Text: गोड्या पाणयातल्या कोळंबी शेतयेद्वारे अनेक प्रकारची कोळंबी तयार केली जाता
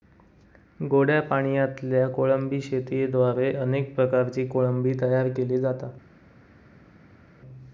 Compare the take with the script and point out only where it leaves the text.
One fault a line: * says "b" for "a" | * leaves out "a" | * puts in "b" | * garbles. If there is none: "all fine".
all fine